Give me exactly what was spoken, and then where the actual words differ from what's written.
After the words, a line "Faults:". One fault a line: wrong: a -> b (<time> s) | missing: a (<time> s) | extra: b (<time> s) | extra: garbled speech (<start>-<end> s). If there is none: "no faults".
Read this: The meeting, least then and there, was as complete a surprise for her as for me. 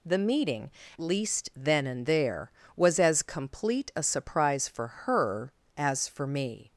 The meeting, least then and there, was as complete a surprise for her as for me.
Faults:
no faults